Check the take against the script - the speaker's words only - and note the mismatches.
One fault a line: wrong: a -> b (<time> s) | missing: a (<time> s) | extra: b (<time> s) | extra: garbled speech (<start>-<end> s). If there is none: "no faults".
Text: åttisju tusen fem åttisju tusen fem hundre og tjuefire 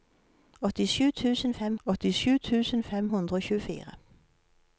no faults